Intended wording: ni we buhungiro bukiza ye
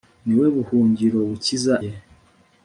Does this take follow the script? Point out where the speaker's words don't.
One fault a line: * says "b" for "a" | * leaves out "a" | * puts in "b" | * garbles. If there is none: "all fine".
all fine